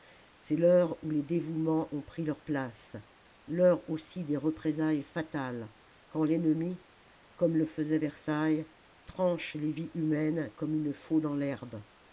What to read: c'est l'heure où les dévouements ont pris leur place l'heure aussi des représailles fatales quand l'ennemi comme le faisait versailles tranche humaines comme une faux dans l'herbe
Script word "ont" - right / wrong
right